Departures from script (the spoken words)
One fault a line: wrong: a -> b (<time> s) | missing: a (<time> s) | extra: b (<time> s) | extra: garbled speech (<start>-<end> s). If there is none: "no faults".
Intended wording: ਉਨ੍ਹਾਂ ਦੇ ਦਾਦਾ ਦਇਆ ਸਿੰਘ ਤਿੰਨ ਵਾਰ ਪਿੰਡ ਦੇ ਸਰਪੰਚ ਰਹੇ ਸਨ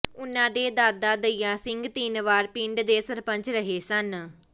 no faults